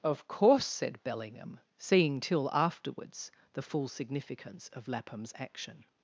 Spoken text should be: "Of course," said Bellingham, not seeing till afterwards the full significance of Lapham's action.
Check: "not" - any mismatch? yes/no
yes